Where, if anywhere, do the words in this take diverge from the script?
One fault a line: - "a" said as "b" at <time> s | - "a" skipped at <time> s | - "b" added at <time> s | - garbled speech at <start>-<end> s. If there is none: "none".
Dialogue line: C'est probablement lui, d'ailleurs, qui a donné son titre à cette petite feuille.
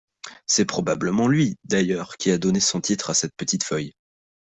none